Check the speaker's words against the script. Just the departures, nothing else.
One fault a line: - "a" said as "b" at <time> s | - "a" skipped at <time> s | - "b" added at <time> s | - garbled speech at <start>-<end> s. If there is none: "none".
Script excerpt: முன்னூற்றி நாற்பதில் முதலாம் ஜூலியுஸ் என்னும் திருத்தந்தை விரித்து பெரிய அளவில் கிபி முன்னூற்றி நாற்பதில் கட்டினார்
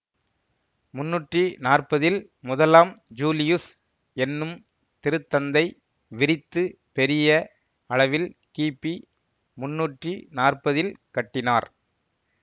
none